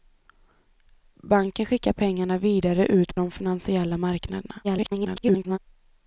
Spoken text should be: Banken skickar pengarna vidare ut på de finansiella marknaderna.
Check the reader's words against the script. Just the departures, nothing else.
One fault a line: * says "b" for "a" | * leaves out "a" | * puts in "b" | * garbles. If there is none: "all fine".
* leaves out "på"
* garbles